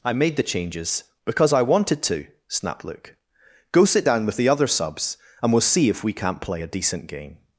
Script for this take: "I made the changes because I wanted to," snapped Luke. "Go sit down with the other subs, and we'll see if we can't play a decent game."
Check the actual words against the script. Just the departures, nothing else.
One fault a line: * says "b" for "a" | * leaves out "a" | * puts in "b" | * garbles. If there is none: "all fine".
all fine